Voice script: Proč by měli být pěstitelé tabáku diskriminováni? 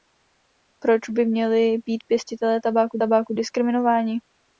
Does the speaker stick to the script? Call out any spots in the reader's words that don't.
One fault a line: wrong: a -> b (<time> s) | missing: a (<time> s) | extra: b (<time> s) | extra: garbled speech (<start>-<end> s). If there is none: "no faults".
extra: tabáku (3.0 s)